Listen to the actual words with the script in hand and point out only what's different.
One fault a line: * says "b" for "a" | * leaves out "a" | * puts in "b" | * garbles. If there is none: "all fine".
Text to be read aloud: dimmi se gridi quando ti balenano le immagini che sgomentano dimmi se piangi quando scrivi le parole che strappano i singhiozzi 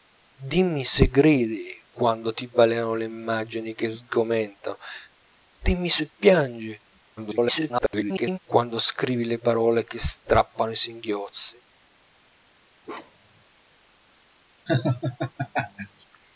* garbles